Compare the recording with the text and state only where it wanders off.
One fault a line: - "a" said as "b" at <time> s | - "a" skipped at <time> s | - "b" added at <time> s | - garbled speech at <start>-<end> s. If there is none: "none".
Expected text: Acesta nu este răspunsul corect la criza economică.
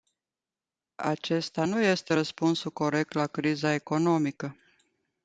none